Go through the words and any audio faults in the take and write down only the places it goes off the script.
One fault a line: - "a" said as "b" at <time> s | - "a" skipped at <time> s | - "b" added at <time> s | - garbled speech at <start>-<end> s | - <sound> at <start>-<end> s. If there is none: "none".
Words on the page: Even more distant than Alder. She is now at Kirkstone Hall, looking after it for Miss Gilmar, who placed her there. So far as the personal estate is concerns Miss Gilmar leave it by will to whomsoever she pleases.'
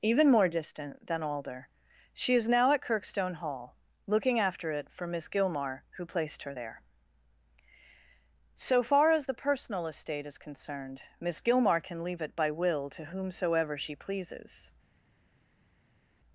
- "concerns" said as "concerned" at 10.4 s
- "can" added at 11.8 s